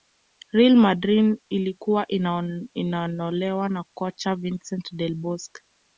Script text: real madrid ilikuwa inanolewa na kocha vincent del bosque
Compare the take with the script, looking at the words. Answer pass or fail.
pass